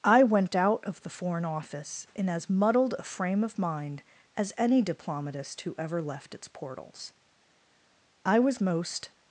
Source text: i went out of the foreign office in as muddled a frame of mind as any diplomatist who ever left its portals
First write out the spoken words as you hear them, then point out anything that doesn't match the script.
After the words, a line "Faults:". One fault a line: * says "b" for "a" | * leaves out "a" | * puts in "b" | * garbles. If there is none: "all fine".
i went out of the foreign office in as muddled a frame of mind as any diplomatist who ever left its portals i was most
Faults:
* puts in "i was most"